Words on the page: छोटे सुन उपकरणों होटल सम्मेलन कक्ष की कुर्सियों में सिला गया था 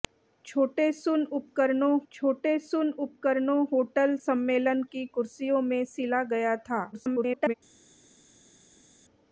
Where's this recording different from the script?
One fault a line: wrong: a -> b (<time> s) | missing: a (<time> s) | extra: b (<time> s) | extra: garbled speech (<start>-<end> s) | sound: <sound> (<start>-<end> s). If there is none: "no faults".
extra: छोटे सुन उपकरणों (2.1 s)
missing: कक्ष (4.8 s)
extra: garbled speech (6.9-7.5 s)